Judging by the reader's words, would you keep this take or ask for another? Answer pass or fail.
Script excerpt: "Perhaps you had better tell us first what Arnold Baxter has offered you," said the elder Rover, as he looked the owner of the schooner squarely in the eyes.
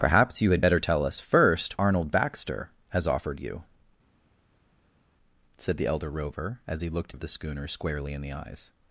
fail